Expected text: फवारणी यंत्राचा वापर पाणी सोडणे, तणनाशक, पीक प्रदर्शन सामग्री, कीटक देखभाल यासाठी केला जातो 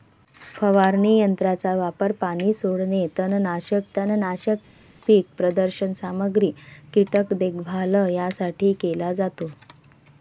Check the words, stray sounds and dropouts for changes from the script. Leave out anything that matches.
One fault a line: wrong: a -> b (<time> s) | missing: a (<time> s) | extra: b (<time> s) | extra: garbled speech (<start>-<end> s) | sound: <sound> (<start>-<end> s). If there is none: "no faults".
extra: तणनाशक (4.0 s)